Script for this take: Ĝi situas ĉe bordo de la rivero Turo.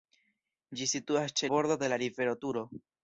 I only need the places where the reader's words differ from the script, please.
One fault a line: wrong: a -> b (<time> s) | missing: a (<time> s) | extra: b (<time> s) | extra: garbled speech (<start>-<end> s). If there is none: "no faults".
no faults